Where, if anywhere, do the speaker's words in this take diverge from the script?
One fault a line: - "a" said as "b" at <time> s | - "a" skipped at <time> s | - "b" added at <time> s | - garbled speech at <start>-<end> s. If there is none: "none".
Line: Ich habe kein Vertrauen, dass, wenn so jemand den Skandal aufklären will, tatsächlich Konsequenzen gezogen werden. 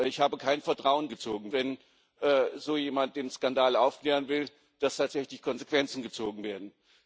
- "dass" said as "gezogen" at 1.1 s